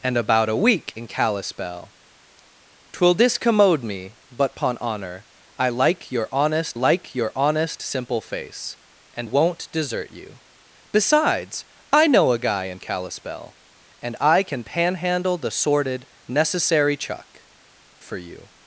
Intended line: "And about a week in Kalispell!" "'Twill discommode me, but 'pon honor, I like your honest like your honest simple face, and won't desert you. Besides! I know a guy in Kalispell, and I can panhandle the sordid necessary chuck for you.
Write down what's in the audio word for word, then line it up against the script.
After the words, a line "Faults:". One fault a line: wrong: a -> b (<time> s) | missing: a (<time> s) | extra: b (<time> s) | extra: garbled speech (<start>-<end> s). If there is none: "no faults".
"And about a week in Kalispell!" "'Twill discommode me, but 'pon honor, I like your honest like your honest simple face, and won't desert you. Besides! I know a guy in Kalispell, and I can panhandle the sordid necessary chuck for you.
Faults:
no faults